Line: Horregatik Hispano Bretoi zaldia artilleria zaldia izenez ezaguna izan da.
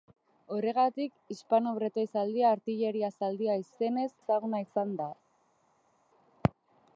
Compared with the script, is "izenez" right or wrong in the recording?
right